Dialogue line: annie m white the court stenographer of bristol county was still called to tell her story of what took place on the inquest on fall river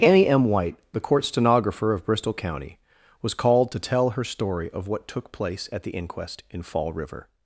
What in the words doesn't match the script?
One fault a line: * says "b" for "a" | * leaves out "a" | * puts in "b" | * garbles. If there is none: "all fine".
* leaves out "still"
* says "at" for "on"
* says "in" for "on"